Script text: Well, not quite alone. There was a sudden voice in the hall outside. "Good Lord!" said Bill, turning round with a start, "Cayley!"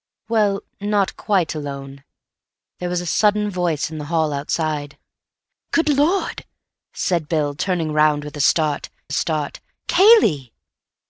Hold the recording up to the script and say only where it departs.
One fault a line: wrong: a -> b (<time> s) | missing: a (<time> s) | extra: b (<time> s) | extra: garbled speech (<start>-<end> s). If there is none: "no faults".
extra: start (9.1 s)